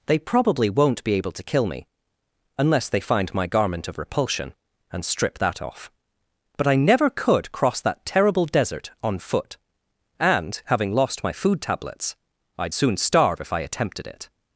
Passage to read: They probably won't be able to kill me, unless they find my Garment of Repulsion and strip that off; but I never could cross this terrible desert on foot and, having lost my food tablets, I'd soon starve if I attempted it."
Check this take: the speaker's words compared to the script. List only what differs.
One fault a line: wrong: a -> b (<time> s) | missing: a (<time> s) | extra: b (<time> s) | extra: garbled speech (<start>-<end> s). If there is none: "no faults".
wrong: this -> that (7.8 s)